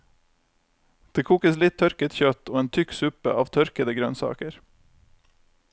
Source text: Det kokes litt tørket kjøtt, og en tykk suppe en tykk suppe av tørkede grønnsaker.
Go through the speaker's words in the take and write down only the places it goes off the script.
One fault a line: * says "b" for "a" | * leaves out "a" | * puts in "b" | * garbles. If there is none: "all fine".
* leaves out "en tykk suppe"